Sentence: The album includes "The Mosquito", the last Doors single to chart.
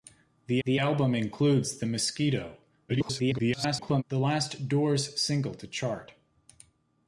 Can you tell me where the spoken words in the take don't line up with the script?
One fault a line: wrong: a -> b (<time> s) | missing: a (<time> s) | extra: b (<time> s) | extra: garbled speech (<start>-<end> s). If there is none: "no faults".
extra: the (0.6 s)
extra: garbled speech (2.9-4.0 s)